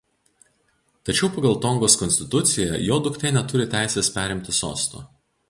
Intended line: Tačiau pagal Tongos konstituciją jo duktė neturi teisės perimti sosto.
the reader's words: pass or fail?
pass